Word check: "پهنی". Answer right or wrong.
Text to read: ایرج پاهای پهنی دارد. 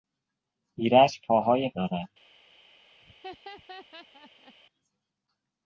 wrong